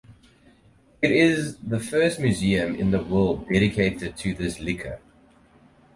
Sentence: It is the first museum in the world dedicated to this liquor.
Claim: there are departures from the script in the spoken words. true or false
false